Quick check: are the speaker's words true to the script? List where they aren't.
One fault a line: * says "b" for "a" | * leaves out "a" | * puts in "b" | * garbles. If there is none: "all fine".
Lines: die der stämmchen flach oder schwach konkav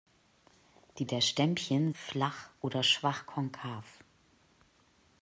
all fine